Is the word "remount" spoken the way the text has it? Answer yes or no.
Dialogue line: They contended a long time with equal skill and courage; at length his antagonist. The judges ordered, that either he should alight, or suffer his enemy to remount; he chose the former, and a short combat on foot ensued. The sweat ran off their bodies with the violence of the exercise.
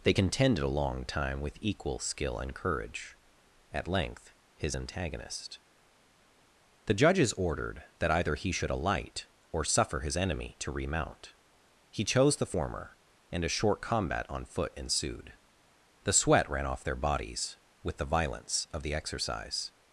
yes